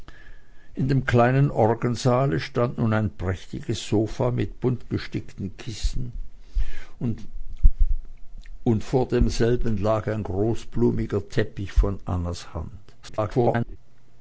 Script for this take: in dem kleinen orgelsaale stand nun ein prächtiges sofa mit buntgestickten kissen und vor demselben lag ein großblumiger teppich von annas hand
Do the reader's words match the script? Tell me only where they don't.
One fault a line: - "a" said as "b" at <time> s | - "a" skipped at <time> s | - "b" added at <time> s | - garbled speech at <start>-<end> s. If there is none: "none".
- garbled speech at 13.0-13.8 s